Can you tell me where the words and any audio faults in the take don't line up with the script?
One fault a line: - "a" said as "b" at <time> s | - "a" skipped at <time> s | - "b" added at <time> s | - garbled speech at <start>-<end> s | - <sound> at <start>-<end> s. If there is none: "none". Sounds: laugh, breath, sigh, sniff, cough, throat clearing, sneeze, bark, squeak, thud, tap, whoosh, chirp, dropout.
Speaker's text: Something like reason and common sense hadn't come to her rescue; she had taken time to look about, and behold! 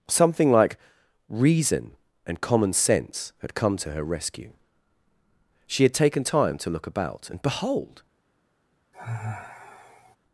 - "hadn't" said as "had" at 3.4 s
- sigh at 8.9-10.2 s